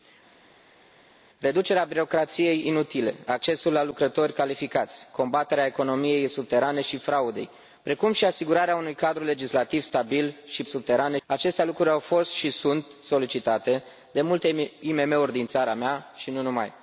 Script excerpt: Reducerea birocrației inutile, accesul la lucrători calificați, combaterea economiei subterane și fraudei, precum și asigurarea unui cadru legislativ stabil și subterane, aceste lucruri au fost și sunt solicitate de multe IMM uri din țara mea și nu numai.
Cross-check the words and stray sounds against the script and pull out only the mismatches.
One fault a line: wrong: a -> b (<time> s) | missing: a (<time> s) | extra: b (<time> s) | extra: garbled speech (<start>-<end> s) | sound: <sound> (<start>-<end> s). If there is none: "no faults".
no faults